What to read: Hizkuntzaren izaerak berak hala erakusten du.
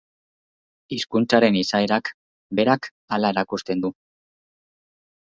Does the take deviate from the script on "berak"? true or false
false